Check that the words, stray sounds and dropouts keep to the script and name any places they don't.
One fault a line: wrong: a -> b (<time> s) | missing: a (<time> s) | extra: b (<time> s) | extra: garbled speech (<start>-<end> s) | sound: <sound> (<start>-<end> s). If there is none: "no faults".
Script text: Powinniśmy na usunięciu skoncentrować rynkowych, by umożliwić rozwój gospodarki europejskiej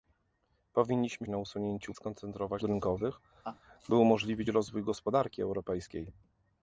sound: laugh (3.4-3.6 s)